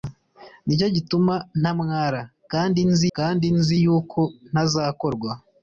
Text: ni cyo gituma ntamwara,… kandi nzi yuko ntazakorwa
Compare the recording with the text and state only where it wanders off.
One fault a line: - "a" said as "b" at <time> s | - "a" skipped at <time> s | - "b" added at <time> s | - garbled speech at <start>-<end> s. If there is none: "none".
- "kandi nzi" added at 3.2 s